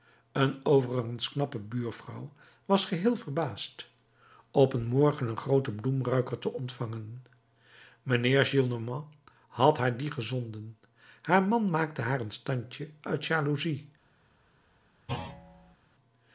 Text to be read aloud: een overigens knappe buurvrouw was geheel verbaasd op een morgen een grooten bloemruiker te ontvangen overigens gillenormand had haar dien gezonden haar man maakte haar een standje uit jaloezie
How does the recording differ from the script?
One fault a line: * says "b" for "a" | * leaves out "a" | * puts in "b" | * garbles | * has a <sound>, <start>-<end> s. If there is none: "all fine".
* says "mijnheer" for "overigens"
* has a thud, 15.1-15.8 s